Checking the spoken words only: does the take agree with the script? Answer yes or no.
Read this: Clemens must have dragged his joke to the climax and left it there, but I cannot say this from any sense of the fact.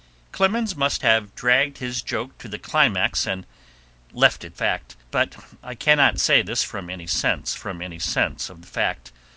no